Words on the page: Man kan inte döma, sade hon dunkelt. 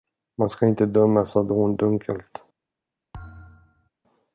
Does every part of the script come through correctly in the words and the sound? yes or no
no